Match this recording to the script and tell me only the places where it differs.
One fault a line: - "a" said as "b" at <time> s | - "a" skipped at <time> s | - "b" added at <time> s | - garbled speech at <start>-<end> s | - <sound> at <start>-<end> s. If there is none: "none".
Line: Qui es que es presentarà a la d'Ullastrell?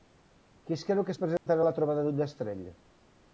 - "creu" added at 0.9 s
- dropout at 1.4-1.5 s
- "trobada" added at 1.8 s